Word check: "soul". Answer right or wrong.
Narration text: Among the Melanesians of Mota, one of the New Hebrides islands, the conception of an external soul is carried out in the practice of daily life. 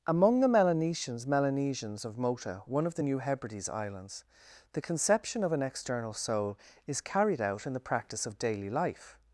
right